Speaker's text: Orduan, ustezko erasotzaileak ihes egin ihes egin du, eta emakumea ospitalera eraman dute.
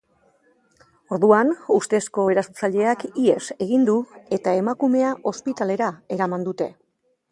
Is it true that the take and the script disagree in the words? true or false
true